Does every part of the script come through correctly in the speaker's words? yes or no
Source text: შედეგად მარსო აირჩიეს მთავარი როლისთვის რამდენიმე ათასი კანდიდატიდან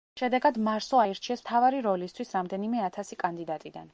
yes